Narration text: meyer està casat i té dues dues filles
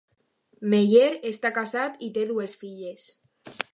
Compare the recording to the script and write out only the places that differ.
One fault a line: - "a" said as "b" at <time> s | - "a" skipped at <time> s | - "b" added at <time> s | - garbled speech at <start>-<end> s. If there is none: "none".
- "dues" skipped at 2.6 s